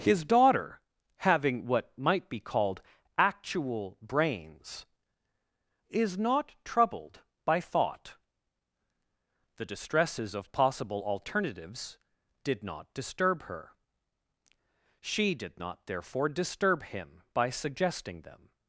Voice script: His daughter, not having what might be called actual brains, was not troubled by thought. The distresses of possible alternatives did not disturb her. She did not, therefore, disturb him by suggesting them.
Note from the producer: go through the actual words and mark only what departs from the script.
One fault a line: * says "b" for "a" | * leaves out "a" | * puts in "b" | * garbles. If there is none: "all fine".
* leaves out "not"
* says "is" for "was"